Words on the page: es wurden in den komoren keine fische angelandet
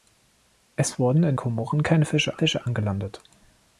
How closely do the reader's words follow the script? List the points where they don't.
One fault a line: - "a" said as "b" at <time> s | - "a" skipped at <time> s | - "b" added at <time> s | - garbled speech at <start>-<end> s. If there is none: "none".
- "den" skipped at 1.4 s
- "fische" added at 2.4 s